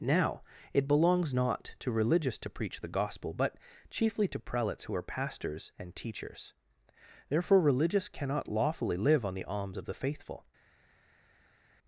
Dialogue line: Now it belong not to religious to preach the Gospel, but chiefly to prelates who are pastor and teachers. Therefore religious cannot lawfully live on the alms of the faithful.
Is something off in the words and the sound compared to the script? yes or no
yes